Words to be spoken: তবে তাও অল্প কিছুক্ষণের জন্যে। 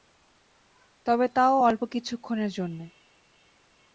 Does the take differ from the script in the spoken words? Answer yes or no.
no